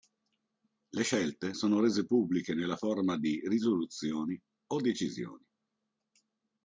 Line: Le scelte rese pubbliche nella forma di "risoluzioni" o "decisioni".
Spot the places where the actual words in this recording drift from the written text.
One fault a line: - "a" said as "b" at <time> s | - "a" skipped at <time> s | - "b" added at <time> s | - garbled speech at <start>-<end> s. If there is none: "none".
- "sono" added at 1.5 s